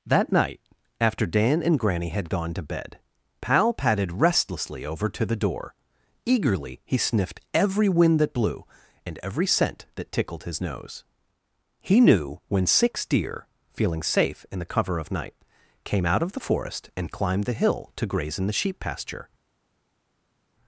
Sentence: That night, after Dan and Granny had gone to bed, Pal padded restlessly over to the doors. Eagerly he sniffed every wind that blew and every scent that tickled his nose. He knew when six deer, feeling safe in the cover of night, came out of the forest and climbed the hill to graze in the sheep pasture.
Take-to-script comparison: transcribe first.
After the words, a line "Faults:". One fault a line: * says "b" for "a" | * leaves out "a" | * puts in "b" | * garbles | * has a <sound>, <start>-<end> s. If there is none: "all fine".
That night, after Dan and Granny had gone to bed, Pal padded restlessly over to the door. Eagerly he sniffed every wind that blew and every scent that tickled his nose. He knew when six deer, feeling safe in the cover of night, came out of the forest and climbed the hill to graze in the sheep pasture.
Faults:
* says "door" for "doors"